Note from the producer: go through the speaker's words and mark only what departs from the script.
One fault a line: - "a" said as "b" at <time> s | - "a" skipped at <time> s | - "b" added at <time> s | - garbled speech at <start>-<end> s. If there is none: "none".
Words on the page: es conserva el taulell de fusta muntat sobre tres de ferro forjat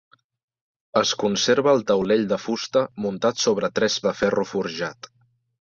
none